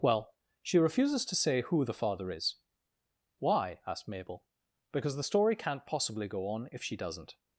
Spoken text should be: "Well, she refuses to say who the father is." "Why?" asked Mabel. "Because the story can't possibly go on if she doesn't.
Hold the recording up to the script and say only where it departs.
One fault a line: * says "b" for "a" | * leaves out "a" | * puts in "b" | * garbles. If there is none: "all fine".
all fine